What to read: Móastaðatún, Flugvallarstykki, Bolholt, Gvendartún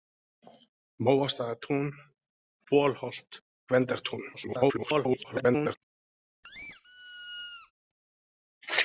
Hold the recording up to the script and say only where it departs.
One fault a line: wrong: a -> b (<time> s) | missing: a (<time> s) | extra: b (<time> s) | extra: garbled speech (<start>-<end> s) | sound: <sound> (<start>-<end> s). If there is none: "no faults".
missing: Flugvallarstykki (1.9 s)
extra: garbled speech (4.3-5.8 s)
sound: squeak (6.4-7.7 s)